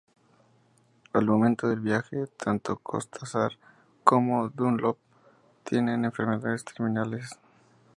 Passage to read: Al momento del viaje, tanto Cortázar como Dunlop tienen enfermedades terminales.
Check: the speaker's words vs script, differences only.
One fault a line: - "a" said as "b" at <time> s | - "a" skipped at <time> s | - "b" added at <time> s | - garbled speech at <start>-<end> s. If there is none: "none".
none